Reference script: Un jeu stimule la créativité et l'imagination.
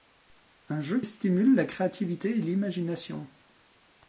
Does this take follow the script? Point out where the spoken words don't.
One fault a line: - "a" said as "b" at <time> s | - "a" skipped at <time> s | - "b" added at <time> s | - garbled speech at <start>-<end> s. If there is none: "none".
none